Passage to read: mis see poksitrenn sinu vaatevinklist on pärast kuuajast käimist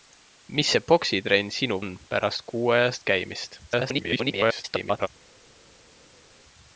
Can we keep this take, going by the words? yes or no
no